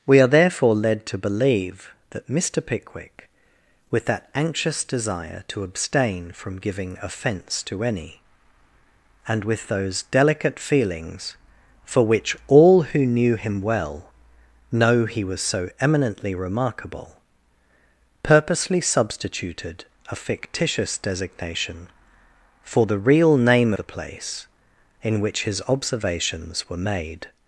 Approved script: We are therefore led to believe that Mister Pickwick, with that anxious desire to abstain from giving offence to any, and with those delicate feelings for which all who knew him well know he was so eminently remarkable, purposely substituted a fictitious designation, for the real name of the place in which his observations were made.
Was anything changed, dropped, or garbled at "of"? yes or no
yes